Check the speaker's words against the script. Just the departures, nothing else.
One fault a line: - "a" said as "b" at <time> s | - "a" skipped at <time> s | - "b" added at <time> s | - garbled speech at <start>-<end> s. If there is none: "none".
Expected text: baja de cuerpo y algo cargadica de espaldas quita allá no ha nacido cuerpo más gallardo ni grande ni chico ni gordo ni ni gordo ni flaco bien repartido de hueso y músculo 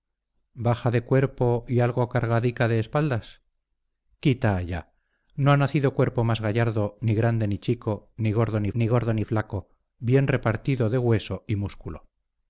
none